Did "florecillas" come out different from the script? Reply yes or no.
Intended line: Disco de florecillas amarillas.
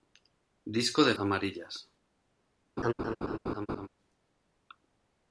yes